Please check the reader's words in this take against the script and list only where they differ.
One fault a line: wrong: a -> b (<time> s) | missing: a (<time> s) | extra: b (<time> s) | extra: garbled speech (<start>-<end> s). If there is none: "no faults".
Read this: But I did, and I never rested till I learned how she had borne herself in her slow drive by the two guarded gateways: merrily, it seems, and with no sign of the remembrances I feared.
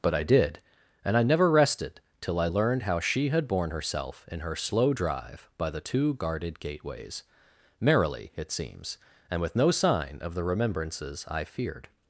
no faults